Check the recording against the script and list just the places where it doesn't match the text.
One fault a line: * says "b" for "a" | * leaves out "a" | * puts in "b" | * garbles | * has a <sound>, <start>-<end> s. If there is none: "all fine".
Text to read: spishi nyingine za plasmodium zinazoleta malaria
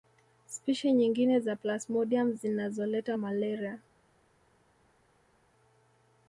all fine